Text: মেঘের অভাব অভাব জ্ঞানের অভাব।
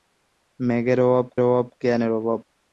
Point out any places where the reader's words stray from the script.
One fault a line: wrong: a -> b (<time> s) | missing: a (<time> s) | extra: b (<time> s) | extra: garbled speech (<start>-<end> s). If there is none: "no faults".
no faults